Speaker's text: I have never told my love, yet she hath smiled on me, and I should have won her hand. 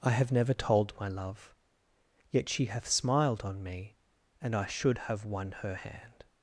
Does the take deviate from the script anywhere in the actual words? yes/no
no